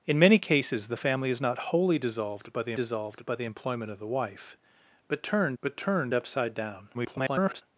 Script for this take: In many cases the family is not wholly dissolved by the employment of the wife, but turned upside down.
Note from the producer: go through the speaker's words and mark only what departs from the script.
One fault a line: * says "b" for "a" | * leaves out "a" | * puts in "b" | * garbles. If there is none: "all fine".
* puts in "dissolved by the"
* puts in "but turned"
* garbles